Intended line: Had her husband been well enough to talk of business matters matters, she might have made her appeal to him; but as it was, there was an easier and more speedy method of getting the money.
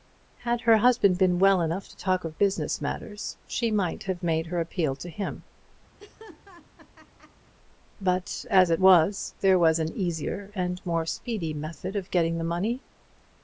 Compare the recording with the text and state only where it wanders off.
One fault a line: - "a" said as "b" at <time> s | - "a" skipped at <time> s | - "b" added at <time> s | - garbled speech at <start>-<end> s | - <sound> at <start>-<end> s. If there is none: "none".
- "matters" skipped at 3.4 s
- laugh at 6.0-7.5 s